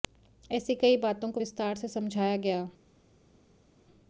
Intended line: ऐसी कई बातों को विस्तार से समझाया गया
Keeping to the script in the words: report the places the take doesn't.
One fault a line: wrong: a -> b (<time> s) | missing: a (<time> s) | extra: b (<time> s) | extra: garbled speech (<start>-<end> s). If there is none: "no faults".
no faults